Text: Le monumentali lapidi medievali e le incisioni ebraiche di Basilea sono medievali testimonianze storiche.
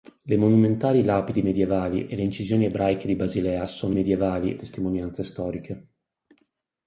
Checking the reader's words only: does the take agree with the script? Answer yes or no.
yes